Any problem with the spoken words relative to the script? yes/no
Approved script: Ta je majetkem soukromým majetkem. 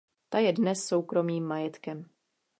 yes